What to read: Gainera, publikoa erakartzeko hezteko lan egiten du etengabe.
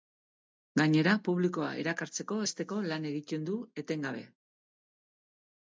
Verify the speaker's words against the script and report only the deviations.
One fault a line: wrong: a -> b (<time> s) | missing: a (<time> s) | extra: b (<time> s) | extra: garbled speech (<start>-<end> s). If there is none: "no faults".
no faults